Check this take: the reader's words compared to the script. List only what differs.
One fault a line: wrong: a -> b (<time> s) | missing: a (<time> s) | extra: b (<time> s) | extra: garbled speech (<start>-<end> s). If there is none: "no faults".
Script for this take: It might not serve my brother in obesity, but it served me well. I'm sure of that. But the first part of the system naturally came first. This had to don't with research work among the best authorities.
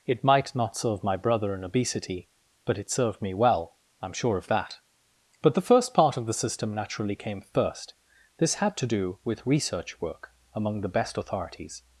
wrong: don't -> do (8.9 s)